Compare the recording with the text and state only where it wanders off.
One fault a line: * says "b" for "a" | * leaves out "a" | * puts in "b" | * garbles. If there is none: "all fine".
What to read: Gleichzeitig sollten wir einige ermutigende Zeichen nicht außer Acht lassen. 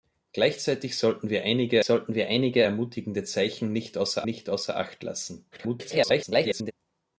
* puts in "sollten wir einige"
* puts in "nicht außer"
* garbles